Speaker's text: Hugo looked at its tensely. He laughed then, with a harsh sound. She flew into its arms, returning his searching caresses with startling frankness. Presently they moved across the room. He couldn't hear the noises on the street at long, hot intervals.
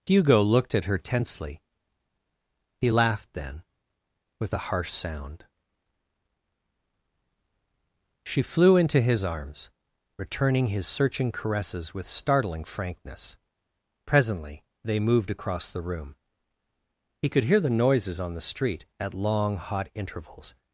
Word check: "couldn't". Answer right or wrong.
wrong